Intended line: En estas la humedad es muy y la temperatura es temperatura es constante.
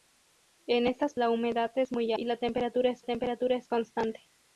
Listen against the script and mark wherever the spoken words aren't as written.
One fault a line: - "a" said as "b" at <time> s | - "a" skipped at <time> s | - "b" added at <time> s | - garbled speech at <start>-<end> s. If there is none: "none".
none